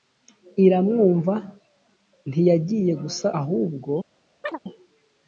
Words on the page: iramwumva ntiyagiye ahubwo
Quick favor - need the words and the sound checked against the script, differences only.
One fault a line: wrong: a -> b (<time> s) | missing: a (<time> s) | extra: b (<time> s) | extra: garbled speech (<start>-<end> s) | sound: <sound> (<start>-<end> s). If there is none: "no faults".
extra: gusa (3.0 s)
sound: chirp (4.4-4.6 s)